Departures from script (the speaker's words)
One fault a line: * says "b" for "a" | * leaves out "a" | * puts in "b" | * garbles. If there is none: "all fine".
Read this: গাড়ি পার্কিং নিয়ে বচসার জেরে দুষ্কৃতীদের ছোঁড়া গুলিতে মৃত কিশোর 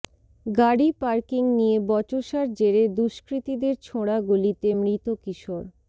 all fine